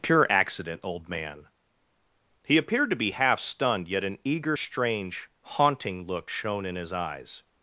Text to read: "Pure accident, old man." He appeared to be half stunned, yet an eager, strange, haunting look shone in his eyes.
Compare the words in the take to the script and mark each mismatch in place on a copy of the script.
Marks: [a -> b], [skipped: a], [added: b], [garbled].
"Pure accident, old man." He appeared to be half stunned, yet an eager, strange, haunting look shone in his eyes.